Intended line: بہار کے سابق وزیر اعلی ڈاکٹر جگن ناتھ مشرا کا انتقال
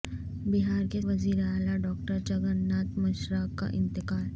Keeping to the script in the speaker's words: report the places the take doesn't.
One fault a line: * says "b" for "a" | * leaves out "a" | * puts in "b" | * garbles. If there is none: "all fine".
* leaves out "سابق"